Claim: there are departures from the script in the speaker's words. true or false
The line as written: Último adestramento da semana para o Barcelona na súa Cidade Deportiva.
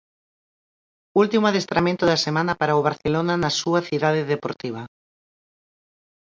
false